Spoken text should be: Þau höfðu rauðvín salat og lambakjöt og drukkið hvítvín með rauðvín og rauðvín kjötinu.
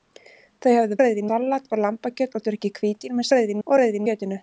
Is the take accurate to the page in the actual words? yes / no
yes